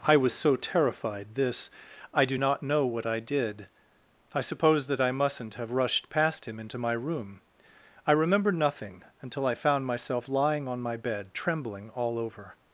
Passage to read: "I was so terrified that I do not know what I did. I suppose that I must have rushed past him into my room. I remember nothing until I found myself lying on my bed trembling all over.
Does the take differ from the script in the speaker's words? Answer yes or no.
yes